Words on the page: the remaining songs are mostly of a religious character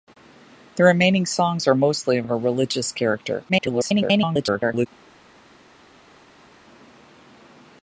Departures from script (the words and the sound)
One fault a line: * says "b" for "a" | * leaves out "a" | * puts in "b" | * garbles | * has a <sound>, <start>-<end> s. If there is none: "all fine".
* puts in "of"
* garbles